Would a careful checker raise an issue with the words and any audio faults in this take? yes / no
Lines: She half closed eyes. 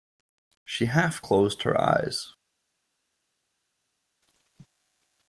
yes